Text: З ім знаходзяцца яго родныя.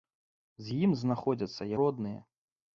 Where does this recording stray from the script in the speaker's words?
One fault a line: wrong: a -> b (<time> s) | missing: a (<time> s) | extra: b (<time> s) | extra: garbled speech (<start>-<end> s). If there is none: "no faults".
missing: яго (1.7 s)